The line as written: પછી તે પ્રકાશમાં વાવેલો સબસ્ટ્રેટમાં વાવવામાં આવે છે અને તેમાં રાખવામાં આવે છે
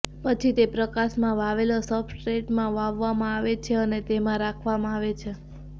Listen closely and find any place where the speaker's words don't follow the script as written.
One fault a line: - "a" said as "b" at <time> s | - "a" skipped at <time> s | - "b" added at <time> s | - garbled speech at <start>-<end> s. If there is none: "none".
none